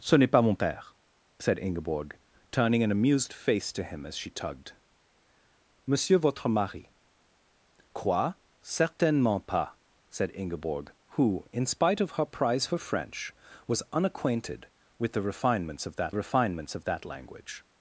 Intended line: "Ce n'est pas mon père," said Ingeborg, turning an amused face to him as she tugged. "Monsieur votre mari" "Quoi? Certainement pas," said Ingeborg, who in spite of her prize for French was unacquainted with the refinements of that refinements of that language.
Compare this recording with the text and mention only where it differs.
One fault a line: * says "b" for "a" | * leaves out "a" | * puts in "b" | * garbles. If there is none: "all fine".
all fine